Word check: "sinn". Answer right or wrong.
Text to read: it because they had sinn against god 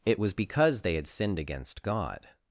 wrong